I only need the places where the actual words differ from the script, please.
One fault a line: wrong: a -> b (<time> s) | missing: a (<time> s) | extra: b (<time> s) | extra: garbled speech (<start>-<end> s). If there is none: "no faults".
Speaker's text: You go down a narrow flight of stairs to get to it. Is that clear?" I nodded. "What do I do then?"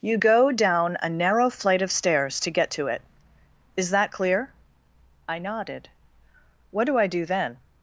no faults